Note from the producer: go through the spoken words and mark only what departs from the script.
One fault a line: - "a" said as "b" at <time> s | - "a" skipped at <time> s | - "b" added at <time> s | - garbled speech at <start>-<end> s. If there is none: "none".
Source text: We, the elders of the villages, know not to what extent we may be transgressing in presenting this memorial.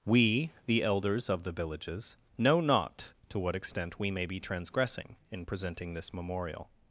none